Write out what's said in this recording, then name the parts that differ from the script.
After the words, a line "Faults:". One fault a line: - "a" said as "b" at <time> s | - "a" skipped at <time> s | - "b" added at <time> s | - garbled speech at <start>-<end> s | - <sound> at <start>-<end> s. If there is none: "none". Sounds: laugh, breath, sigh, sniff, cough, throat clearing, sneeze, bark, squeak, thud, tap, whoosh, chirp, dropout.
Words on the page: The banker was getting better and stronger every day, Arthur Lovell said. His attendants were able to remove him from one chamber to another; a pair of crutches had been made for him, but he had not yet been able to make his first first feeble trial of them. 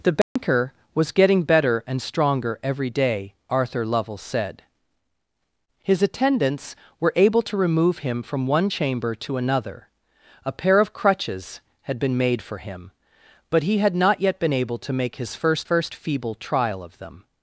The banker was getting better and stronger every day, Arthur Lovell said. His attendants were able to remove him from one chamber to another; a pair of crutches had been made for him, but he had not yet been able to make his first first feeble trial of them.
Faults:
- dropout at 0.2-0.4 s